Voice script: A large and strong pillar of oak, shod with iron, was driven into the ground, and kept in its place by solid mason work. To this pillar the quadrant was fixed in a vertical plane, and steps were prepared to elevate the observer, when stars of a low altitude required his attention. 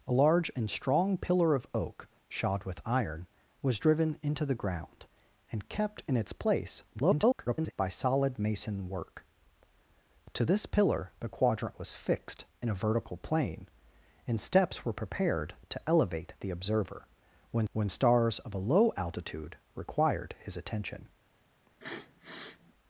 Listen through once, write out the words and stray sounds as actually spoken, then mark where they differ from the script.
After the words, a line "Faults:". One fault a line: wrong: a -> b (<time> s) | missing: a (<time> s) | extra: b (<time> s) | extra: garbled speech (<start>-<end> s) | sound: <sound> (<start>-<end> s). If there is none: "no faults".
A large and strong pillar of oak, shod with iron, was driven into the ground, and kept in its place [garbled] by solid mason work. To this pillar the quadrant was fixed in a vertical plane, and steps were prepared to elevate the observer, when when stars of a low altitude required his attention.
Faults:
extra: garbled speech (6.9-7.7 s)
extra: when (17.7 s)
sound: sniff (21.7-22.7 s)